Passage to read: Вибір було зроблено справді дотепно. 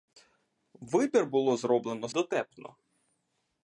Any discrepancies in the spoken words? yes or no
yes